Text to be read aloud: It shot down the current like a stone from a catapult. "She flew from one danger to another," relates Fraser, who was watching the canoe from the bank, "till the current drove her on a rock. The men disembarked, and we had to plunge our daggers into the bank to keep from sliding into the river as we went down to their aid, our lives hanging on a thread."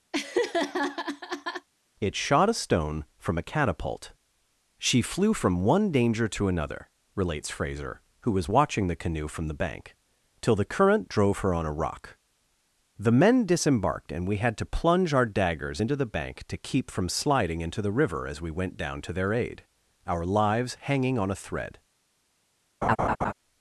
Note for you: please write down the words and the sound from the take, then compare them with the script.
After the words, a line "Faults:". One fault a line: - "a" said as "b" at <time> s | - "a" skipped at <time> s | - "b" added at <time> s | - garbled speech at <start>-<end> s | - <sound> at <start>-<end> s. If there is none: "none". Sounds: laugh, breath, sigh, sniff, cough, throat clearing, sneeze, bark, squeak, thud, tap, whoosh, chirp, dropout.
It shot a stone from a catapult. "She flew from one danger to another," relates Fraser, who was watching the canoe from the bank, "till the current drove her on a rock. The men disembarked, and we had to plunge our daggers into the bank to keep from sliding into the river as we went down to their aid, our lives hanging on a thread."
Faults:
- laugh at 0.1-1.7 s
- "down the current like" skipped at 2.5 s
- laugh at 22.8-23.3 s